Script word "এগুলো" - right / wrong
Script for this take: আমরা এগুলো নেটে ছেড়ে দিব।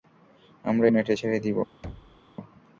wrong